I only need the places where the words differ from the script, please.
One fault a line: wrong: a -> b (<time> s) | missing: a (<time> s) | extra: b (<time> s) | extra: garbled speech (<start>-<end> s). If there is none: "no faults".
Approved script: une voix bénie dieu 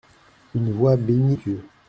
no faults